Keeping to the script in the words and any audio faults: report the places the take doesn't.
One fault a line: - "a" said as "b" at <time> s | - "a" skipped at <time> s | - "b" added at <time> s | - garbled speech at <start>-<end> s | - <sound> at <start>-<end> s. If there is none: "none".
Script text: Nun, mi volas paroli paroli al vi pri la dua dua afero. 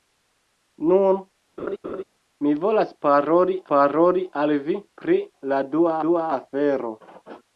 - laugh at 1.6-2.0 s